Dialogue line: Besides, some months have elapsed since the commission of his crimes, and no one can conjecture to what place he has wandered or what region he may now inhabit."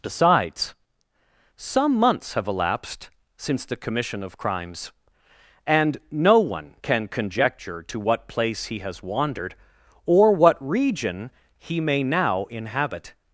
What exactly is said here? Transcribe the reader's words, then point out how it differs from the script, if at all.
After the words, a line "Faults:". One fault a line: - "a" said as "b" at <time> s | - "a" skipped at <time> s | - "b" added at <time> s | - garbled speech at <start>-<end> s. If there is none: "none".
Besides, some months have elapsed since the commission of crimes, and no one can conjecture to what place he has wandered or what region he may now inhabit."
Faults:
- "his" skipped at 4.4 s